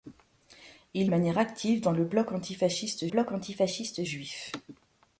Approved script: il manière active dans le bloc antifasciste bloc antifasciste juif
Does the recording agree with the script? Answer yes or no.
yes